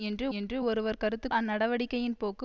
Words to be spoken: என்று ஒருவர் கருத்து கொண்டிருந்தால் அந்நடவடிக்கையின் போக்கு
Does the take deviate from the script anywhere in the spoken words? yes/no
yes